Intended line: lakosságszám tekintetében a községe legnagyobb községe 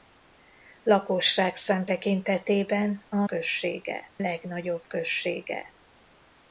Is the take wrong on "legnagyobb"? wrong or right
right